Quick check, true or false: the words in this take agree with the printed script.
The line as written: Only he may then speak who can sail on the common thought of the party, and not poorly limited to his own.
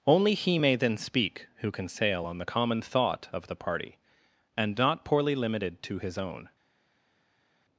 true